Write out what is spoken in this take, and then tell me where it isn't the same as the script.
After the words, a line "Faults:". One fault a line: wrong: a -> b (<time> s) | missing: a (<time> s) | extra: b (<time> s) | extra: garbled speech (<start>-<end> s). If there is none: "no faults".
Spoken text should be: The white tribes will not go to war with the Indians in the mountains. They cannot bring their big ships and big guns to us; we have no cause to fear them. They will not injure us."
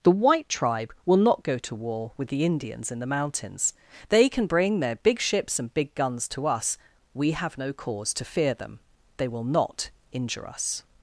The white tribe will not go to war with the Indians in the mountains. They can bring their big ships and big guns to us; we have no cause to fear them. They will not injure us."
Faults:
wrong: tribes -> tribe (0.5 s)
wrong: cannot -> can (4.3 s)